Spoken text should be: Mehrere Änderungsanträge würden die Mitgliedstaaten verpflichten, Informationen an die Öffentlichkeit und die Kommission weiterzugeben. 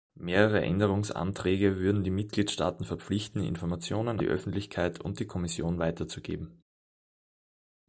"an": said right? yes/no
no